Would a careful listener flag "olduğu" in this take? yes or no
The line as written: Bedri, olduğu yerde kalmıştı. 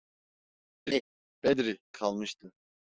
yes